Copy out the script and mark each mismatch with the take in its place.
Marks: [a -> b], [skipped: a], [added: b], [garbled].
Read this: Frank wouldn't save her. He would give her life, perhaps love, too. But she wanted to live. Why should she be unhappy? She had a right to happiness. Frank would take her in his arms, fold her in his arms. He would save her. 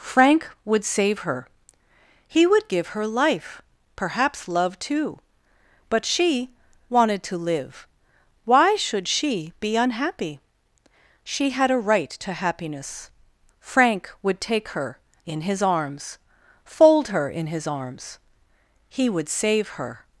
Frank [wouldn't -> would] save her. He would give her life, perhaps love, too. But she wanted to live. Why should she be unhappy? She had a right to happiness. Frank would take her in his arms, fold her in his arms. He would save her.